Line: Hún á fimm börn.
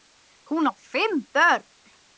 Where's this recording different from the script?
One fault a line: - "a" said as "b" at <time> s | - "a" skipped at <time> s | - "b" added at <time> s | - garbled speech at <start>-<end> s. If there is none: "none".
none